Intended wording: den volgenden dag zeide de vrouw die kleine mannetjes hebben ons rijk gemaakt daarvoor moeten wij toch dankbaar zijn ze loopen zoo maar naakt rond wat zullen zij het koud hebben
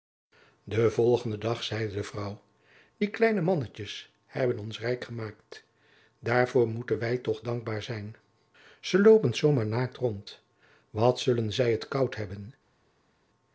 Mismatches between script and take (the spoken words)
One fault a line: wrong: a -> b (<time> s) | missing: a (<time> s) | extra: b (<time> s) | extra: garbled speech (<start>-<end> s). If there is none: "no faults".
no faults